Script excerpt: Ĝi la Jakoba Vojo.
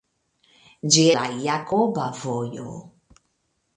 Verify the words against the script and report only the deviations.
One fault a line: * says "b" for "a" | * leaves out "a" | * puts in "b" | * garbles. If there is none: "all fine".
all fine